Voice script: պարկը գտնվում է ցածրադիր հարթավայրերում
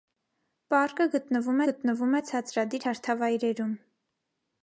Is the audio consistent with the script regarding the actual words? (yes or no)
no